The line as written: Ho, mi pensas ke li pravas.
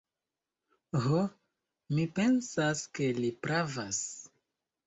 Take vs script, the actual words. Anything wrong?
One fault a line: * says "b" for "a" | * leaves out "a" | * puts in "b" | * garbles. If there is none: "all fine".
all fine